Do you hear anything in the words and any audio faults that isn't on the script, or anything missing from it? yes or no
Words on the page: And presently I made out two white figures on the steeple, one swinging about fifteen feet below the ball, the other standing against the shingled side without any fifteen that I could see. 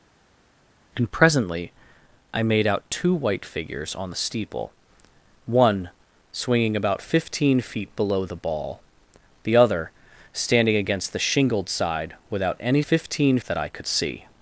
no